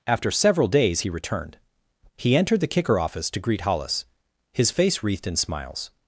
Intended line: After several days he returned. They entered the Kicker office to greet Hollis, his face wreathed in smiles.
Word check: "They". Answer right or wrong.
wrong